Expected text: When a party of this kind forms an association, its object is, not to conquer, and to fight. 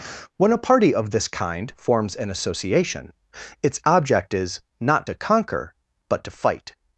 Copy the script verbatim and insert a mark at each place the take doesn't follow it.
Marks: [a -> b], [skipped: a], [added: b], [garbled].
When a party of this kind forms an association, its object is, not to conquer, [and -> but] to fight.